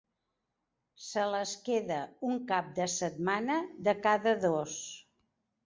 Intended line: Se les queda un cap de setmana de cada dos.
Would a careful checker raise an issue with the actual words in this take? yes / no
no